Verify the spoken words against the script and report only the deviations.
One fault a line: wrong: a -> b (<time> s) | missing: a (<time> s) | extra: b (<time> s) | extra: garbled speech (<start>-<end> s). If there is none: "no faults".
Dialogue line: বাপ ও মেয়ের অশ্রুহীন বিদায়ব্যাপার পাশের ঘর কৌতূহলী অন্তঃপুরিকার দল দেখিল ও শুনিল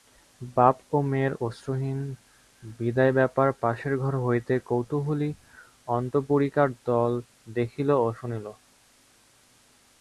extra: হইতে (4.2 s)